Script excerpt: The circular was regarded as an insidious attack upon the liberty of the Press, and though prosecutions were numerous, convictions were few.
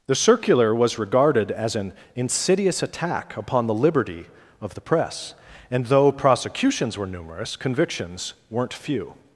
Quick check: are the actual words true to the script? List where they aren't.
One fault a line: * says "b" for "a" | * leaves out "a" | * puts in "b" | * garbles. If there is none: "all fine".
* says "weren't" for "were"